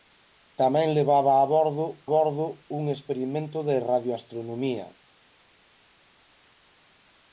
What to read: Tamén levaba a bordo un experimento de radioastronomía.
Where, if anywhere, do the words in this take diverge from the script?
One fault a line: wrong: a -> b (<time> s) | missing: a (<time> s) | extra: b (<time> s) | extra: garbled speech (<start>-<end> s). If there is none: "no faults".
extra: bordo (2.1 s)